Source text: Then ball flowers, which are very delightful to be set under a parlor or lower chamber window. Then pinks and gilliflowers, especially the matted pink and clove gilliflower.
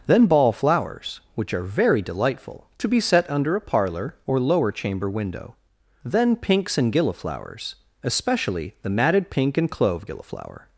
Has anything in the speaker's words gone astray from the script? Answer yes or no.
no